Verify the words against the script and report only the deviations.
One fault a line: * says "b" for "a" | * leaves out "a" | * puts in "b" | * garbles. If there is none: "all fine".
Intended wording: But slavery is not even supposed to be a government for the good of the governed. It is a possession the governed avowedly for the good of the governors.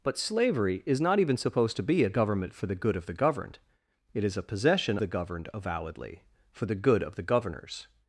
all fine